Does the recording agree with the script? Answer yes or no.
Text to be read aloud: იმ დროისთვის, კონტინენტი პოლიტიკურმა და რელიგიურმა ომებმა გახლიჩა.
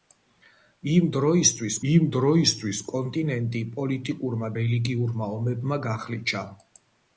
no